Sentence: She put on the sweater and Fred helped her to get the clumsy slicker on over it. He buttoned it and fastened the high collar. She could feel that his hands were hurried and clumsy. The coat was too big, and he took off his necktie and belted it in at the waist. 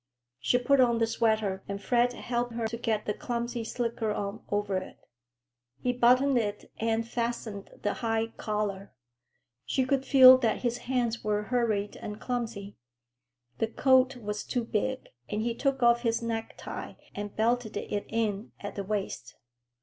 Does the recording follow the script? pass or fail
pass